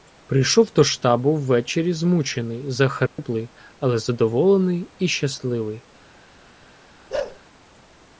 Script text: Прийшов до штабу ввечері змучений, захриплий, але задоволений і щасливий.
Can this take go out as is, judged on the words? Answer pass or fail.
pass